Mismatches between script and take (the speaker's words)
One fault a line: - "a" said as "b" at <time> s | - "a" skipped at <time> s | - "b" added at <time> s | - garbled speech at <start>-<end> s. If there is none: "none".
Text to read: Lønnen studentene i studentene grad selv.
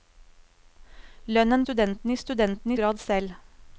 none